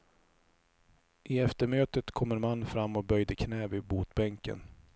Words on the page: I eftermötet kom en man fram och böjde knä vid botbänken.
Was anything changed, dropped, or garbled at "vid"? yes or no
no